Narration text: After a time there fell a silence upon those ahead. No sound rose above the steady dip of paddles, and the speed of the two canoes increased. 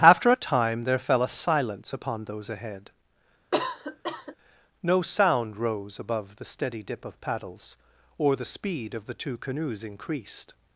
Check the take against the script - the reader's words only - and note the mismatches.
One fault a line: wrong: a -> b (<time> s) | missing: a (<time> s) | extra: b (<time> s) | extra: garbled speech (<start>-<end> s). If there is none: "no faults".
wrong: and -> or (8.2 s)